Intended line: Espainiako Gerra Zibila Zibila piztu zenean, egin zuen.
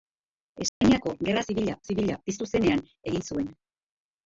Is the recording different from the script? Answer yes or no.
no